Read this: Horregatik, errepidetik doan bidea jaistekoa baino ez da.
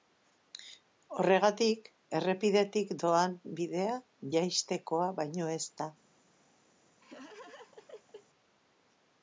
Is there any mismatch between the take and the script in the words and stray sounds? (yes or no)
yes